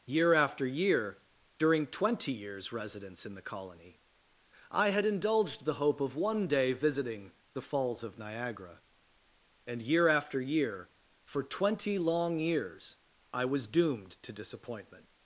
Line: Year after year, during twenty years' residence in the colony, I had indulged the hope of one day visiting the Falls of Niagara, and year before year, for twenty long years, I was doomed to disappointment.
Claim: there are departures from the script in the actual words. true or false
true